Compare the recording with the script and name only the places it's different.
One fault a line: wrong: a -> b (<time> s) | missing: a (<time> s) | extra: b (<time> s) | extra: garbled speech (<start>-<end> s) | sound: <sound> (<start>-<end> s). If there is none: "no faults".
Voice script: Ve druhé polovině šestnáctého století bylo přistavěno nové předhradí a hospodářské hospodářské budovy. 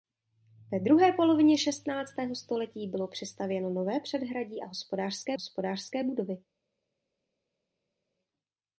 no faults